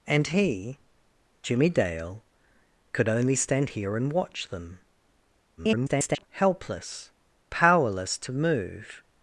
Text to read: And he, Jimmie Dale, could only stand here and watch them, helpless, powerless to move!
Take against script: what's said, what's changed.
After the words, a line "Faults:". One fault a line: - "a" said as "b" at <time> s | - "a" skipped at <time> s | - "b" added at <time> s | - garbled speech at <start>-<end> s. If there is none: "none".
And he, Jimmie Dale, could only stand here and watch them, [garbled] helpless, powerless to move!
Faults:
- garbled speech at 5.6-6.3 s